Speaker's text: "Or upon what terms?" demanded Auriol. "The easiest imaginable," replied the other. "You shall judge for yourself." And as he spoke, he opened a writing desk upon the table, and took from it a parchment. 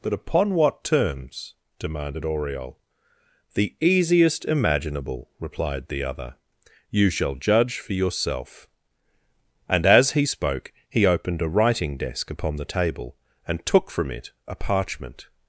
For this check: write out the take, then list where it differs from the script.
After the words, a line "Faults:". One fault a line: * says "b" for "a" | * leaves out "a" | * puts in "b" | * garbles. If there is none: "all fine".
"But upon what terms?" demanded Auriol. "The easiest imaginable," replied the other. "You shall judge for yourself." And as he spoke, he opened a writing desk upon the table, and took from it a parchment.
Faults:
* says "But" for "Or"